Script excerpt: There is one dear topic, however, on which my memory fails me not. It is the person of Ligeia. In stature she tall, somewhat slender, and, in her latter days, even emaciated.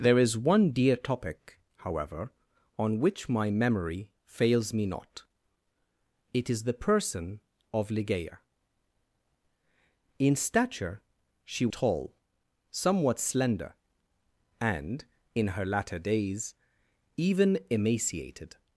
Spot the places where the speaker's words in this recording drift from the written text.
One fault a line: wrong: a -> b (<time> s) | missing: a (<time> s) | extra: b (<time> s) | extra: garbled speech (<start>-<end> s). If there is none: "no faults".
no faults